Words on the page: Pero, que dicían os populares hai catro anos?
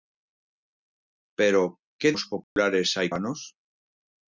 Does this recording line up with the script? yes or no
no